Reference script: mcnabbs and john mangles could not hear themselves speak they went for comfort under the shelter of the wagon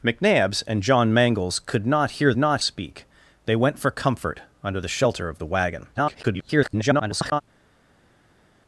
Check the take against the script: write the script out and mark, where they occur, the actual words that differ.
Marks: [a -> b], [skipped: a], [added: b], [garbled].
mcnabbs and john mangles could not hear [themselves -> not] speak they went for comfort under the shelter of the wagon [garbled]